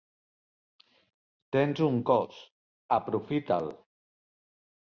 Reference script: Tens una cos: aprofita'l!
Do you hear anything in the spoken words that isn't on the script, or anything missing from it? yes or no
yes